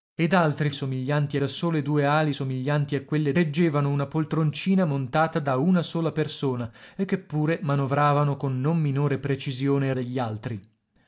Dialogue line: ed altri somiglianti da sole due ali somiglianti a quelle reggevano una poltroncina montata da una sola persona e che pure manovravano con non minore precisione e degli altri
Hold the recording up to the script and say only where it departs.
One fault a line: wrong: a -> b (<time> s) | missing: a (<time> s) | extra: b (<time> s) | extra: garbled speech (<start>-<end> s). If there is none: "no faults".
no faults